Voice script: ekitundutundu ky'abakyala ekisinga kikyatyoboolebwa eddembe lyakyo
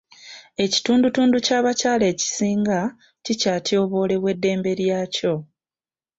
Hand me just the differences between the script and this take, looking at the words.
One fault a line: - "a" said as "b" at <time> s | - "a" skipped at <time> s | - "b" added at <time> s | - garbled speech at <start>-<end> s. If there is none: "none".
none